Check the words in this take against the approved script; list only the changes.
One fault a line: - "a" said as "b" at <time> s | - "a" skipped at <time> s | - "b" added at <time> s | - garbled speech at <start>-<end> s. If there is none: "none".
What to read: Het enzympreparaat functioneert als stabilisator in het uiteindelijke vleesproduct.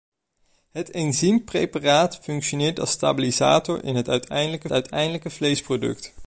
- "uiteindelijke" added at 4.7 s